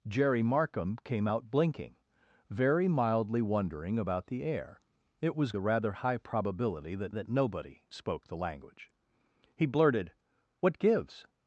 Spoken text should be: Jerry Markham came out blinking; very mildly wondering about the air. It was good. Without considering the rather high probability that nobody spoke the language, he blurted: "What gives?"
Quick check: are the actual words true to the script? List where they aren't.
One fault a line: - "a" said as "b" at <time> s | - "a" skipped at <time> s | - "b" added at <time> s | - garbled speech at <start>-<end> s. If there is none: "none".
- "good Without considering" skipped at 5.5 s
- "that" added at 7.1 s